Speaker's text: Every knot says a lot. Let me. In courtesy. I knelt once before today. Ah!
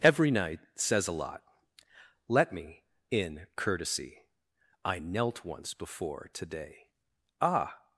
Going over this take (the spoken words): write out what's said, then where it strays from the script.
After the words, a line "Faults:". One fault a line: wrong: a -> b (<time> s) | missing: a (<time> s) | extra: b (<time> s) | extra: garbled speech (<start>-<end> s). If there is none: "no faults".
Every night says a lot. Let me. In courtesy. I knelt once before today. Ah!
Faults:
wrong: knot -> night (0.3 s)